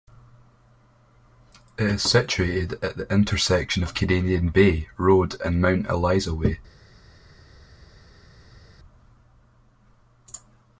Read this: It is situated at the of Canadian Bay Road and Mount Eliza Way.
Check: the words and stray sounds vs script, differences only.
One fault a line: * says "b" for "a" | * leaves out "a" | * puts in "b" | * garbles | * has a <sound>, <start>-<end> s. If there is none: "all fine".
* puts in "intersection"